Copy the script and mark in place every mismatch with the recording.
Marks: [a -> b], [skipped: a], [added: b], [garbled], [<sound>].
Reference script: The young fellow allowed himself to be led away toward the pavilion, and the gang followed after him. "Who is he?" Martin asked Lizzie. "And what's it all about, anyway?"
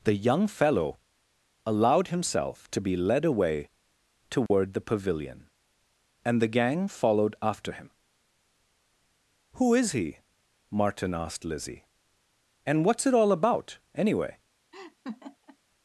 The young fellow allowed himself to be led away toward [dropout] the pavilion, and the gang followed after him. "Who is he?" Martin asked Lizzie. "And what's it all about, anyway?" [laugh]